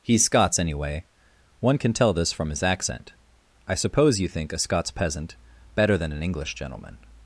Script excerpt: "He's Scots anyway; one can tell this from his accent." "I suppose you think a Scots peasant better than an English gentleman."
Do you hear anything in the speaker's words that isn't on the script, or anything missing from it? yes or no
no